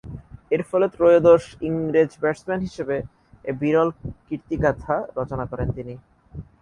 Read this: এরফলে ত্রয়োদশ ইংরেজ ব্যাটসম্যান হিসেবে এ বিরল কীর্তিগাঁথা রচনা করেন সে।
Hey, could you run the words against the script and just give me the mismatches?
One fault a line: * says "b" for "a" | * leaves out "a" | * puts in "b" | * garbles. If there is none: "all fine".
* says "তিনি" for "সে"